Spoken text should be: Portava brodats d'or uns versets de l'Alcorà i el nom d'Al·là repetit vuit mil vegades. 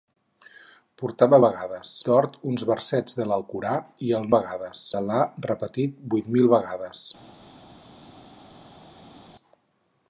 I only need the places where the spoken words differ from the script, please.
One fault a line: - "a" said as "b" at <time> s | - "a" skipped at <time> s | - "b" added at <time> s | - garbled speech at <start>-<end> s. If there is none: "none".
- "brodats" said as "vegades" at 1.5 s
- "nom" said as "vegades" at 4.4 s